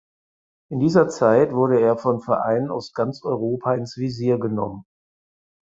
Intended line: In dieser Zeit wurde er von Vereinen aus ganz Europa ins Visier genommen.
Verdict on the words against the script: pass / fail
pass